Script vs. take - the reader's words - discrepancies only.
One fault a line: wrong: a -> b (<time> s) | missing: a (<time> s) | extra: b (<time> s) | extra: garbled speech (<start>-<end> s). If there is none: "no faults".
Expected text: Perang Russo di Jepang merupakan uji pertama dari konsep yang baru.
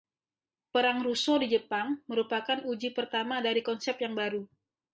no faults